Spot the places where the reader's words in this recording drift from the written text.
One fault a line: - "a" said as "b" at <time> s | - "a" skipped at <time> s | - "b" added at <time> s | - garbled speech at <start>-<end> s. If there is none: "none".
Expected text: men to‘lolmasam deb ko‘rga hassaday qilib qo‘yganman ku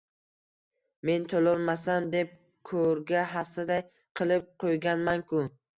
none